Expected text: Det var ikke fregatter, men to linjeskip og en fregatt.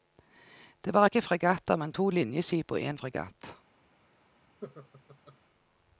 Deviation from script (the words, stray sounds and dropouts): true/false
true